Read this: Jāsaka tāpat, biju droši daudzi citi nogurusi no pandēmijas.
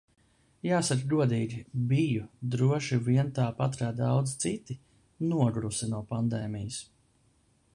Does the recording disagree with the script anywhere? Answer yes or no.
yes